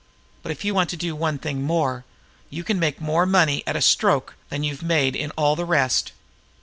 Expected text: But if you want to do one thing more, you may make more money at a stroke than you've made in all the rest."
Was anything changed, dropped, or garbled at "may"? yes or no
yes